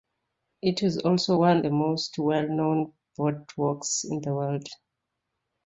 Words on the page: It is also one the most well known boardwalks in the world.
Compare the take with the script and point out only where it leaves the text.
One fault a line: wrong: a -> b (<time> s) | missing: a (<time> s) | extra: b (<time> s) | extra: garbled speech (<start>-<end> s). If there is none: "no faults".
no faults